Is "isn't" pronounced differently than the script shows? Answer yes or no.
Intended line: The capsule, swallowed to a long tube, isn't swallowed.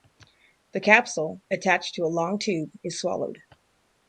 yes